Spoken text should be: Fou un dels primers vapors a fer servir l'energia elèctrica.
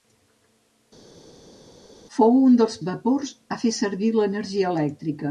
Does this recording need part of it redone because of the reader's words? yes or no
yes